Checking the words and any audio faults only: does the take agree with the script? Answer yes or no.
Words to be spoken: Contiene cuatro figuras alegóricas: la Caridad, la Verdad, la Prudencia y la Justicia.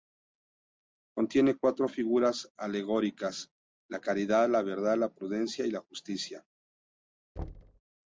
no